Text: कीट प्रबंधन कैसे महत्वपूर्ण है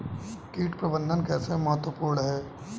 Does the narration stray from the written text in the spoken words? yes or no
no